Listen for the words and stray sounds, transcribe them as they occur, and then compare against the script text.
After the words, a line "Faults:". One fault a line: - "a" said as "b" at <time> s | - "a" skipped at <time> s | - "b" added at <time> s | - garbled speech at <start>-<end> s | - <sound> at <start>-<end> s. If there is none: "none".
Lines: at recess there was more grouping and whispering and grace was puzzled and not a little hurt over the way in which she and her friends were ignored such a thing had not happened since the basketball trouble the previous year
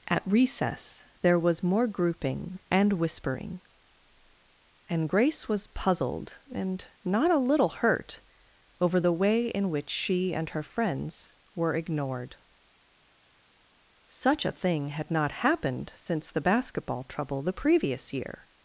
at recess there was more grouping and whispering and grace was puzzled and not a little hurt over the way in which she and her friends were ignored such a thing had not happened since the basketball trouble the previous year
Faults:
none